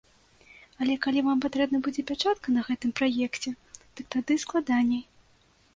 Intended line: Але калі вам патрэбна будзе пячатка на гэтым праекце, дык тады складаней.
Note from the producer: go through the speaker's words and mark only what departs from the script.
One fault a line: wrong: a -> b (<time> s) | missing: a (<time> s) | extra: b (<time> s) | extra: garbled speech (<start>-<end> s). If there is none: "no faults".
no faults